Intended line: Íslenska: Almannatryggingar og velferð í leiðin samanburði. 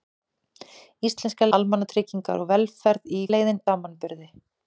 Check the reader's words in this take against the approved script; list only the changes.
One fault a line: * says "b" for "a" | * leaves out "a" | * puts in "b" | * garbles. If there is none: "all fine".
all fine